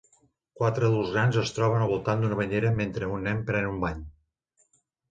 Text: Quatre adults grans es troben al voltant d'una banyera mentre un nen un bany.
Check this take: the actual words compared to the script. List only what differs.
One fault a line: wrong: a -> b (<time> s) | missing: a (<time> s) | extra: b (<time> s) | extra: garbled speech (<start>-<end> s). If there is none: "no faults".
extra: pren (3.5 s)